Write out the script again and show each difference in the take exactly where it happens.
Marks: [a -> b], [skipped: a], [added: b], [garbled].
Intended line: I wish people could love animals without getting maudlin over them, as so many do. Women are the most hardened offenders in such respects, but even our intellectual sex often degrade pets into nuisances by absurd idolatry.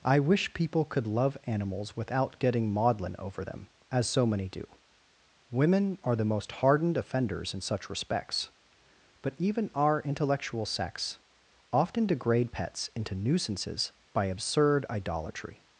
I wish people could love animals without getting maudlin over them, as so many do. Women are the most hardened offenders in such respects, but even our intellectual sex often degrade pets into nuisances by absurd idolatry.